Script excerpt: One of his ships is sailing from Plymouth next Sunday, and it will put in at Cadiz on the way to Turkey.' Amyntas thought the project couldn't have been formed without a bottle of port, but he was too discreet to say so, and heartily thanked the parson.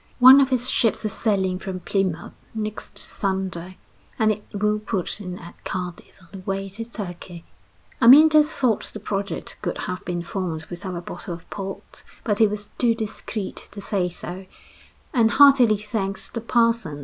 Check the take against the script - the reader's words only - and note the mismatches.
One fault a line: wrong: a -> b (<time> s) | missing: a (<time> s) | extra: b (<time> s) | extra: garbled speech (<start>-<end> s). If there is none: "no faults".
wrong: couldn't -> could (9.6 s)